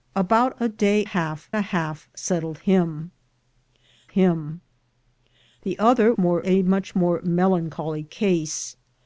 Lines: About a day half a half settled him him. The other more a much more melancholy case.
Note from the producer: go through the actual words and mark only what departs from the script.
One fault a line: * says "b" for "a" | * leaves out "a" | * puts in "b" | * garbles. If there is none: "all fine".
all fine